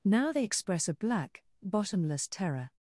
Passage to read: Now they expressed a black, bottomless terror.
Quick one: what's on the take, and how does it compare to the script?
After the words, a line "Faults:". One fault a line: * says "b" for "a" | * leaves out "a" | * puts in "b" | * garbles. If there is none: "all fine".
Now they express a black, bottomless terror.
Faults:
* says "express" for "expressed"